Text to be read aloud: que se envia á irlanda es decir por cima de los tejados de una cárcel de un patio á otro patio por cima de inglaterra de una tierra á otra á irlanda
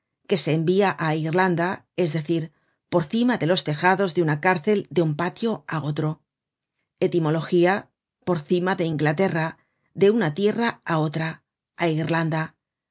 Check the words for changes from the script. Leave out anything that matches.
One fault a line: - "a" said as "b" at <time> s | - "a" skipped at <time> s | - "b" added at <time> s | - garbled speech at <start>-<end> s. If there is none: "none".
- "patio" said as "etimología" at 7.1 s